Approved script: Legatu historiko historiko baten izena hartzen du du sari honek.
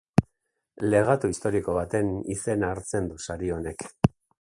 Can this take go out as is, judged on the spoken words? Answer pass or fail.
fail